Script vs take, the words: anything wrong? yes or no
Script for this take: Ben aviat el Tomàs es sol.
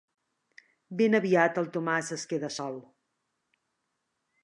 yes